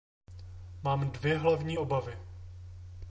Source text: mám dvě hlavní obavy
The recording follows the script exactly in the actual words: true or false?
true